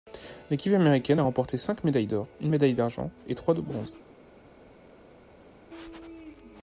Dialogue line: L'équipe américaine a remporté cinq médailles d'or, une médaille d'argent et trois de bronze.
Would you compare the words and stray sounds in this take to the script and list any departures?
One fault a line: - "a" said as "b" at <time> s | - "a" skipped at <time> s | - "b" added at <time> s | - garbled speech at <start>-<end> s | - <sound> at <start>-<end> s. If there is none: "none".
none